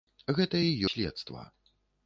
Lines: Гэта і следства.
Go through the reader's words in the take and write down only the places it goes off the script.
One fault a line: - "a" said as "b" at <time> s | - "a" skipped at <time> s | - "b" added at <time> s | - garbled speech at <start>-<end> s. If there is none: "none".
none